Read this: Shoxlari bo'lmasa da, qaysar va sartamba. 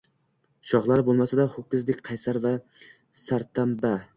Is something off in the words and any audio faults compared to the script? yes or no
yes